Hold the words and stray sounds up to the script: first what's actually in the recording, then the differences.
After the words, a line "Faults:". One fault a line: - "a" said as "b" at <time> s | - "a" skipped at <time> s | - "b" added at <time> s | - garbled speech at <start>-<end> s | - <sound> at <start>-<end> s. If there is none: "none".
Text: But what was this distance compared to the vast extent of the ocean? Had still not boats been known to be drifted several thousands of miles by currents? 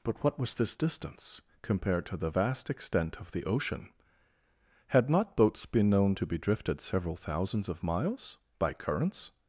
But what was this distance compared to the vast extent of the ocean? Had not boats been known to be drifted several thousands of miles by currents?
Faults:
- "still" skipped at 5.1 s